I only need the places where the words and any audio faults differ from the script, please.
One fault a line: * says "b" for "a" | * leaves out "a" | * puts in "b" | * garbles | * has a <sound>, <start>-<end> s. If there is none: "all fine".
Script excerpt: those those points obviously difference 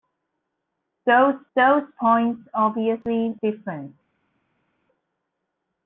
all fine